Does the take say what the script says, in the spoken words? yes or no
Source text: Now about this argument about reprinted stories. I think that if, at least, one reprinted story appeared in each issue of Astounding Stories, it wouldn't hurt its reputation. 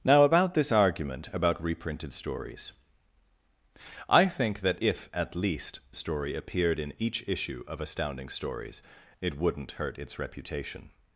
no